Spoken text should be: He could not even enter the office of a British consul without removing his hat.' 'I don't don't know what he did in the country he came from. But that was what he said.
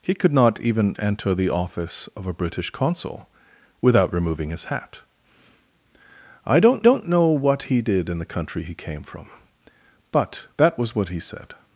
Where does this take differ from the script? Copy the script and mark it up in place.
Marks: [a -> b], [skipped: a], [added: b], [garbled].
He could not even enter the office of a British consul without removing his hat.' 'I don't don't know what he did in the country he came from. But that was what he said.